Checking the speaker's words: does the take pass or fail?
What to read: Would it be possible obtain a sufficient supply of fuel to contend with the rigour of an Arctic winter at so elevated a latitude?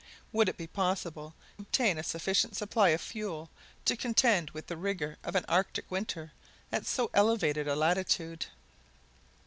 pass